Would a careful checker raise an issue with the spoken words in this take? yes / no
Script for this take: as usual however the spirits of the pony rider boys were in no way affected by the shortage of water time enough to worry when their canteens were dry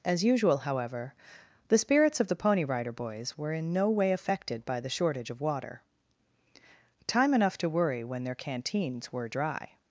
no